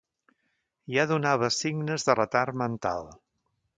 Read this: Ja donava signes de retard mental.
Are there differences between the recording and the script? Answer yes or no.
no